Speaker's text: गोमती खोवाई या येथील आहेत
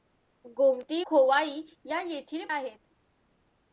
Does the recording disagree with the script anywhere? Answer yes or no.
no